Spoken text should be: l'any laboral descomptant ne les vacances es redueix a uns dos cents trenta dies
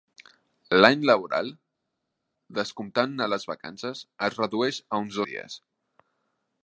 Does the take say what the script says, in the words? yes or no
no